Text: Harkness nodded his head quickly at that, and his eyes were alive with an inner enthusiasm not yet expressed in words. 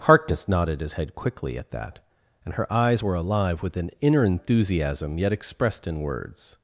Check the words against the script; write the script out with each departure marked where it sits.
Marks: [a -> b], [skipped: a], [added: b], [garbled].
Harkness nodded his head quickly at that, and [his -> her] eyes were alive with an inner enthusiasm [skipped: not] yet expressed in words.